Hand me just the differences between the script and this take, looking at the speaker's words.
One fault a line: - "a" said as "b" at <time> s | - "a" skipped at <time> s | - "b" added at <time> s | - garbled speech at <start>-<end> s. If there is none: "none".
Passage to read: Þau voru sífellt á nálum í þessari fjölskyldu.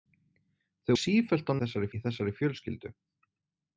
- "voru" skipped at 0.9 s
- "nálum" said as "þessari" at 1.6 s